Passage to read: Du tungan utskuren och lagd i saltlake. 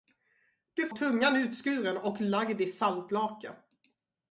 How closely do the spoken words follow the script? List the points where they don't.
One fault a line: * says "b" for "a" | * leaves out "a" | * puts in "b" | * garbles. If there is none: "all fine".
all fine